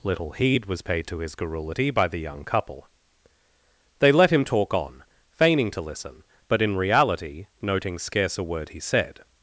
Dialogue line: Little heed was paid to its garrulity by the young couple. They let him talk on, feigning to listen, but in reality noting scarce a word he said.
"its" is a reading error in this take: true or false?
true